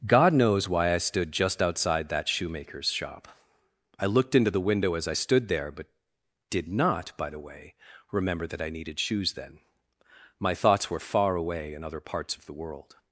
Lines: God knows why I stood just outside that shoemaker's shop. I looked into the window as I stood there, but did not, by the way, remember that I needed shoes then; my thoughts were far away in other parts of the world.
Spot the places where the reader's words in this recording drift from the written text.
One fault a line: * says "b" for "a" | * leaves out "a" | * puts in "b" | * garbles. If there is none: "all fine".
all fine